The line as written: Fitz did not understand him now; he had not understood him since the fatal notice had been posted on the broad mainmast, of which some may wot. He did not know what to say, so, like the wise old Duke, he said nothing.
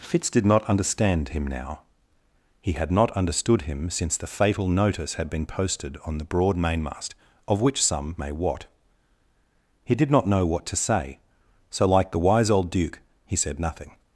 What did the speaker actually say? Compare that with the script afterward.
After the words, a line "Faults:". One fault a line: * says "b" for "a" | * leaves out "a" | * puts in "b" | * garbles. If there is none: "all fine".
Fitz did not understand him now; he had not understood him since the fatal notice had been posted on the broad mainmast, of which some may wot. He did not know what to say, so, like the wise old Duke, he said nothing.
Faults:
all fine